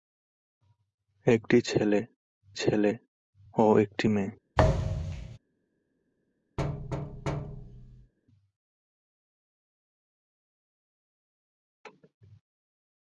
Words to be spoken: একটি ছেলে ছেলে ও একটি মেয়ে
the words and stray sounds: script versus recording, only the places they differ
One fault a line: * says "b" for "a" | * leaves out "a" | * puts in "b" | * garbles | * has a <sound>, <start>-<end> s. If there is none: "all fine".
* has a thud, 4.6-5.4 s
* has a thud, 6.6-8.1 s